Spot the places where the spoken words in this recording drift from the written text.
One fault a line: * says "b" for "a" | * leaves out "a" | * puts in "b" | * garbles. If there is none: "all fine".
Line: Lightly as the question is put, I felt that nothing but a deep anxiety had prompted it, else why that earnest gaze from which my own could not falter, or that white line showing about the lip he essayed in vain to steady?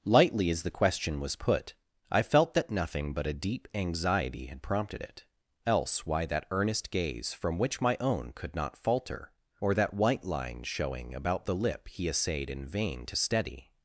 * says "was" for "is"